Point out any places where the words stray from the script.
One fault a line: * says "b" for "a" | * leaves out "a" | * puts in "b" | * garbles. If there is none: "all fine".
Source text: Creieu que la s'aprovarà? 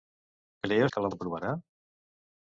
all fine